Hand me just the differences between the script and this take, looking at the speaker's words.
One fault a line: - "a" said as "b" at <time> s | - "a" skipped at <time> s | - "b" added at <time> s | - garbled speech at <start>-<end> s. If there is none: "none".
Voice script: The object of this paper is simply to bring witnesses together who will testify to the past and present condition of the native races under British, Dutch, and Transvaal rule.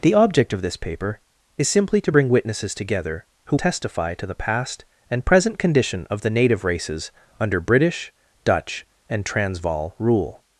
- "will" skipped at 3.6 s